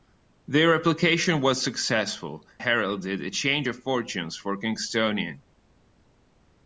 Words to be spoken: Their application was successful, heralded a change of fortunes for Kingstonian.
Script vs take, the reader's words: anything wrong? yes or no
no